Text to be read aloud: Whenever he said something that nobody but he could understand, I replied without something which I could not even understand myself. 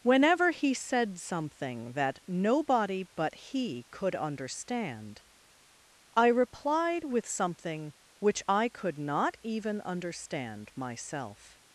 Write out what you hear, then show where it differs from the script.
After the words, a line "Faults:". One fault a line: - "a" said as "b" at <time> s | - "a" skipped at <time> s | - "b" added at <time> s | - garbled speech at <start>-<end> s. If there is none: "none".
Whenever he said something that nobody but he could understand, I replied with something which I could not even understand myself.
Faults:
- "without" said as "with" at 7.0 s